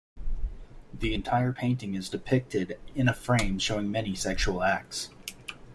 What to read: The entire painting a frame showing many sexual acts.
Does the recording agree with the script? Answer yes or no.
no